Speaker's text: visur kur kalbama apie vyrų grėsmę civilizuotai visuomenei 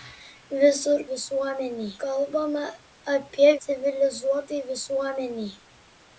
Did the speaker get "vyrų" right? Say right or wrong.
wrong